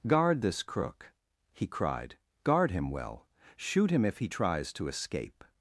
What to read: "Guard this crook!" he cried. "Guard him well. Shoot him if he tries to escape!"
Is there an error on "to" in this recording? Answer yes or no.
no